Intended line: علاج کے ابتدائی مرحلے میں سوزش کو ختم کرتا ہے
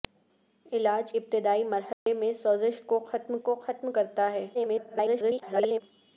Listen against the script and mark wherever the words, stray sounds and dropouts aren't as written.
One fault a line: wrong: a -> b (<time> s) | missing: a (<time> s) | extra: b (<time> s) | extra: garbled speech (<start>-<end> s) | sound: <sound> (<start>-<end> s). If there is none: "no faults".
missing: کے (1.1 s)
sound: dropout (1.9-2.1 s)
extra: کو ختم (3.4 s)
extra: garbled speech (4.5-5.8 s)